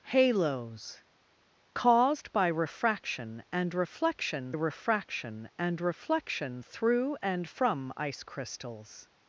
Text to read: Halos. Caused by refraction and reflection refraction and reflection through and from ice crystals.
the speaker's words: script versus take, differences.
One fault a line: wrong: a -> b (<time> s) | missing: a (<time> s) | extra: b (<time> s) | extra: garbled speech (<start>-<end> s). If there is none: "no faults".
no faults